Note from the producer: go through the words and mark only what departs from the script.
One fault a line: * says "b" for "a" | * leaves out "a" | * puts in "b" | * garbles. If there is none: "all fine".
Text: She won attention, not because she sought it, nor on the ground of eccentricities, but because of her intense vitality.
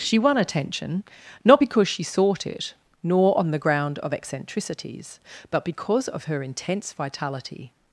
all fine